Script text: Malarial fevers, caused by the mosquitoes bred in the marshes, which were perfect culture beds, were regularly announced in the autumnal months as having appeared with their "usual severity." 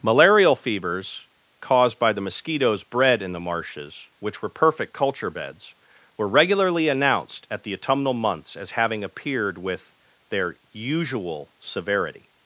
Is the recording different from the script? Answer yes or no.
yes